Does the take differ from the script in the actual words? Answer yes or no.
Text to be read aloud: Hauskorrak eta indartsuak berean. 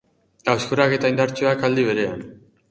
yes